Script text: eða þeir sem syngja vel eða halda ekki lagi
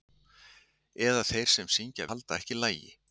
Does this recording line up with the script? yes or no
no